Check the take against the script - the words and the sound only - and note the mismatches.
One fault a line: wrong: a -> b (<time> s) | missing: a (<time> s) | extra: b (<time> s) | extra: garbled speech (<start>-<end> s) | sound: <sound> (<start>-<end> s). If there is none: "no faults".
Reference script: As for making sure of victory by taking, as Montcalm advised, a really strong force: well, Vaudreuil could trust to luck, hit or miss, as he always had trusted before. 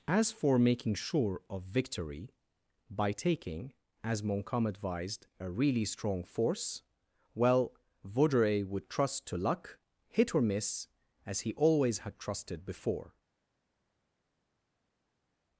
wrong: could -> would (8.7 s)